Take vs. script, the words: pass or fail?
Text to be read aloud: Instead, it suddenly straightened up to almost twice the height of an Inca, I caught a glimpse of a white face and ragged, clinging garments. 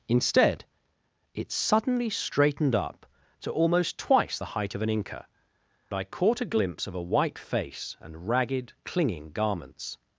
pass